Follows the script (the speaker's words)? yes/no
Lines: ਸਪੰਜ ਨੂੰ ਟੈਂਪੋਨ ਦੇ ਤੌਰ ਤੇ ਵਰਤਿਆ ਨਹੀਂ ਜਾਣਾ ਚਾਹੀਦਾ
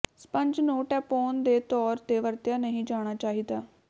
yes